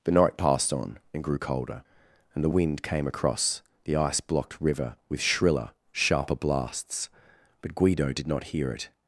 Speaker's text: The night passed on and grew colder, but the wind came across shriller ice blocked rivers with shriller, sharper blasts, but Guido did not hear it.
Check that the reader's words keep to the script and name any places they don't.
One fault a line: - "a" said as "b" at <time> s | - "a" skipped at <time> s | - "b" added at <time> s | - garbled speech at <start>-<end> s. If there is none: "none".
- "but" said as "and" at 2.3 s
- "shriller" said as "the" at 3.8 s
- "rivers" said as "river" at 4.6 s